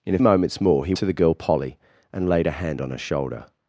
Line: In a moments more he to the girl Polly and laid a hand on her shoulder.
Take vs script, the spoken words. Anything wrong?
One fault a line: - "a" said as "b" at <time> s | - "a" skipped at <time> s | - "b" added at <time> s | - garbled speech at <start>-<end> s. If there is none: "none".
none